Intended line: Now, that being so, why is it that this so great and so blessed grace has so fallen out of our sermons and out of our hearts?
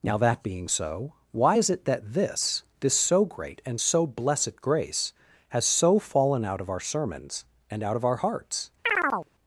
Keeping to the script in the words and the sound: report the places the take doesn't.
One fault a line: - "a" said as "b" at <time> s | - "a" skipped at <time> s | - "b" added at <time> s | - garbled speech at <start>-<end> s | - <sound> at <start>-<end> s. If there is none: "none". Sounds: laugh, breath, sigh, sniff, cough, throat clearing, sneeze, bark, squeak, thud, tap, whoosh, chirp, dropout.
- "this" added at 2.8 s
- chirp at 8.8-9.3 s